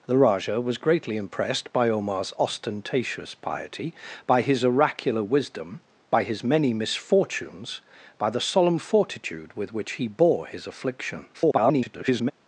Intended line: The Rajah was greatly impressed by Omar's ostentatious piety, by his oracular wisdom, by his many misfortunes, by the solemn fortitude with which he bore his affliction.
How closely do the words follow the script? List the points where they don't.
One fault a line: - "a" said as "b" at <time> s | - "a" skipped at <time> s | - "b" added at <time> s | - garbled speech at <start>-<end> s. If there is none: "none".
- garbled speech at 11.3-12.3 s